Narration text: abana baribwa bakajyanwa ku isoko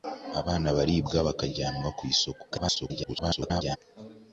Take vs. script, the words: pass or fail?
fail